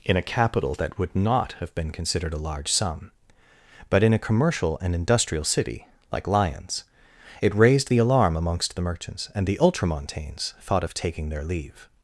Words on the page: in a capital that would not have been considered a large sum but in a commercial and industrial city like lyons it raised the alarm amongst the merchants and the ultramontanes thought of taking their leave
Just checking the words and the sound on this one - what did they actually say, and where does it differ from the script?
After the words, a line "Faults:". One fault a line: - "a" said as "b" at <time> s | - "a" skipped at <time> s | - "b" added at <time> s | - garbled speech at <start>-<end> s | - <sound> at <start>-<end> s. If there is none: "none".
in a capital that would not have been considered a large sum but in a commercial and industrial city like lyons it raised the alarm amongst the merchants and the ultramontanes thought of taking their leave
Faults:
none